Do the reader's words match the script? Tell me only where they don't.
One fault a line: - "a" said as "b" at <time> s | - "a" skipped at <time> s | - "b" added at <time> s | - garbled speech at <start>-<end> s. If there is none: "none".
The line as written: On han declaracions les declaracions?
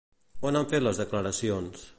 - "declaracions" said as "fet" at 0.7 s